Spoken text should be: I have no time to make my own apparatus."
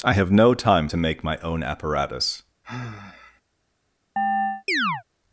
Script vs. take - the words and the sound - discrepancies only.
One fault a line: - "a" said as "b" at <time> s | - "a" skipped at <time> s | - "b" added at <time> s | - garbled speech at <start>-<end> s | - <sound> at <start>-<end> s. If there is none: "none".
- sigh at 2.6-3.4 s
- chirp at 4.2-5.0 s